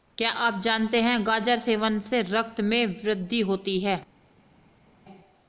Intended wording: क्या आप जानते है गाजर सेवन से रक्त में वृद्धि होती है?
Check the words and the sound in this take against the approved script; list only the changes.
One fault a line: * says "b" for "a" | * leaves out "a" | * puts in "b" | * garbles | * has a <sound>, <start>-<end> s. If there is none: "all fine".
all fine